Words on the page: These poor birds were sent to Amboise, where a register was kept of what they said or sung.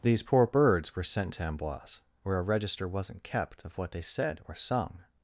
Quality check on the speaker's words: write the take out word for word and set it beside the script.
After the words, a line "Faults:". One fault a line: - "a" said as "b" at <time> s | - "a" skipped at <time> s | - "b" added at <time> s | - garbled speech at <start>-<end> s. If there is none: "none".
These poor birds were sent to Amboise, where a register wasn't kept of what they said or sung.
Faults:
- "was" said as "wasn't" at 2.9 s